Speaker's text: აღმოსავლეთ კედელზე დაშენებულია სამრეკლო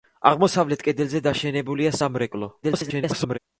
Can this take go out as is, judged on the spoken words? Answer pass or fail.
fail